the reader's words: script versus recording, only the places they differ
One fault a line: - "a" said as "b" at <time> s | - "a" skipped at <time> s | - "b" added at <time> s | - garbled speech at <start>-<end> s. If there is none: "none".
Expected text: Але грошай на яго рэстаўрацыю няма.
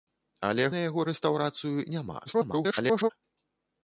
- "грошай" skipped at 0.6 s
- garbled speech at 2.3-3.1 s